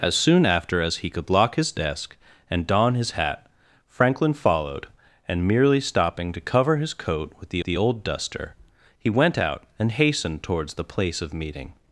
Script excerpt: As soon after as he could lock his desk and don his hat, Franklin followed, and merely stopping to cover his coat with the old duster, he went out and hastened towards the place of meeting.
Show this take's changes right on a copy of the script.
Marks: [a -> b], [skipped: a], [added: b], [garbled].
As soon after as he could lock his desk and don his hat, Franklin followed, and merely stopping to cover his coat with the [added: the] old duster, he went out and hastened towards the place of meeting.